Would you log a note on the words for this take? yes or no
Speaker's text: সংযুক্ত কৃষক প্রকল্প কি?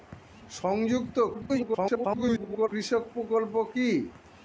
yes